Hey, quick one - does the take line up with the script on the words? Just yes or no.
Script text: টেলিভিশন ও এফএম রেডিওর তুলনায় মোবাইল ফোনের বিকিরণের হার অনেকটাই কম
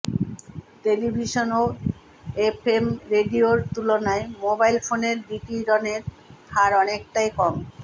yes